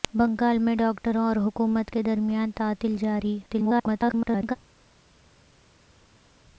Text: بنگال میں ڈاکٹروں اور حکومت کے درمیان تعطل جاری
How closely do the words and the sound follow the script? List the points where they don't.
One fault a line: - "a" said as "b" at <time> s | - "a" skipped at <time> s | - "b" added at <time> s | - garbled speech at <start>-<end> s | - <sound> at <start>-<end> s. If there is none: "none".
- garbled speech at 3.5-4.6 s